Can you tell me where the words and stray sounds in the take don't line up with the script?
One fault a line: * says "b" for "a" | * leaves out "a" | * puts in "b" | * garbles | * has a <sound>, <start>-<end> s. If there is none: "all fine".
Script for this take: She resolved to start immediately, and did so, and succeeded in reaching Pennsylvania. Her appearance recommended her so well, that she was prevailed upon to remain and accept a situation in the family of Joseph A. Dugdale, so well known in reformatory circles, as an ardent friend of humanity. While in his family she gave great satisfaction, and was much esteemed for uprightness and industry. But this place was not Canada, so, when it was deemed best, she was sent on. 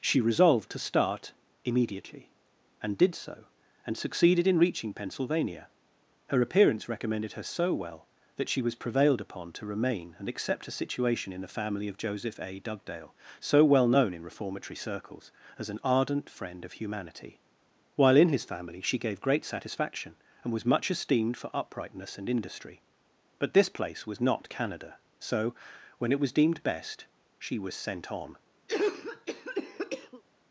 * has a cough, 28.7-30.2 s